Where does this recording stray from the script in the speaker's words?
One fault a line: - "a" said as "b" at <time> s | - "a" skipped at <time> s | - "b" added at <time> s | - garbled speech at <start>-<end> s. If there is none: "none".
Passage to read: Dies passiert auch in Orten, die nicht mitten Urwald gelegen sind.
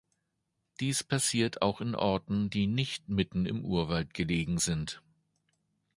- "im" added at 3.5 s